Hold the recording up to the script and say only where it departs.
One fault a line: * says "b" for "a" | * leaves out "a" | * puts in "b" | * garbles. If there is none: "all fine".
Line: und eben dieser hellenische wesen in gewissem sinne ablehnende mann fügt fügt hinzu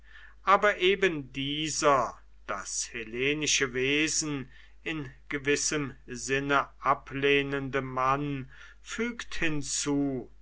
* says "aber" for "und"
* puts in "das"
* leaves out "fügt"